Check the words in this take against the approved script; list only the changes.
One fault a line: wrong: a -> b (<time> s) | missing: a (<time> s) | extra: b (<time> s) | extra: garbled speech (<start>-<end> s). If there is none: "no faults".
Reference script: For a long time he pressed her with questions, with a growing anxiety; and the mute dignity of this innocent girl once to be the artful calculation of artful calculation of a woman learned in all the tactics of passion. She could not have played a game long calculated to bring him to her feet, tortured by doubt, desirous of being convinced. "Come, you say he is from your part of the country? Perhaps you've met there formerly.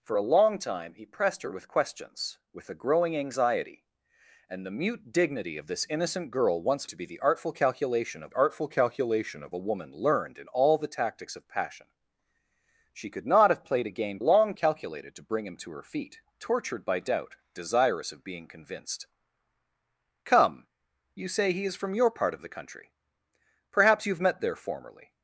no faults